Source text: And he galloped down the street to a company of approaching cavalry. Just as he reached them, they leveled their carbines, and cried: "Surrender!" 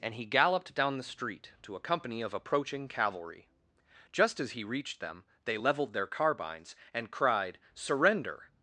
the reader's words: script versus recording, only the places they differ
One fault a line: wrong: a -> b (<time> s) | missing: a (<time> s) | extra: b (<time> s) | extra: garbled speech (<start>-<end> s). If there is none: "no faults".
no faults